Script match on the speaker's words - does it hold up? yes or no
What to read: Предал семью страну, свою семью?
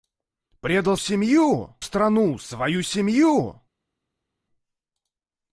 yes